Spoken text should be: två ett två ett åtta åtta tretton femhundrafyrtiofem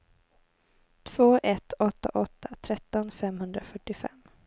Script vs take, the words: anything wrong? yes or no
yes